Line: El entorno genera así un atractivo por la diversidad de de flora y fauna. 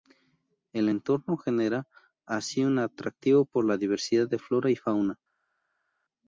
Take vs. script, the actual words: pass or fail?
fail